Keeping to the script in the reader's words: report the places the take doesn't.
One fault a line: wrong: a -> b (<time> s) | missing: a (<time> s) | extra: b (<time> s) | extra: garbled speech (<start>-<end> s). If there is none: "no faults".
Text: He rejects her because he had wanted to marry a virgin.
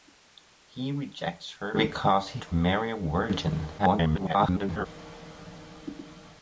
missing: had wanted (2.4 s)
extra: garbled speech (3.8-4.9 s)